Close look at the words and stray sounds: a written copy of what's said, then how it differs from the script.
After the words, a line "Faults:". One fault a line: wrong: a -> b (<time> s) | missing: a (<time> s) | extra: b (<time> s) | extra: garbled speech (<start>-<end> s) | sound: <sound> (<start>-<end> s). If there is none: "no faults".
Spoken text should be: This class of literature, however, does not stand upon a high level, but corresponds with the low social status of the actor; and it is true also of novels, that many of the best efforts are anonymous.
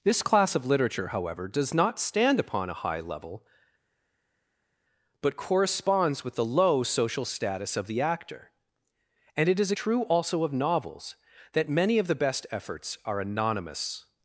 This class of literature, however, does not stand upon a high level, but corresponds with the low social status of the actor; and it is true also of novels, that many of the best efforts are anonymous.
Faults:
no faults